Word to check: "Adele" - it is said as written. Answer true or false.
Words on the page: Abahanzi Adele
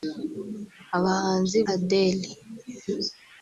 true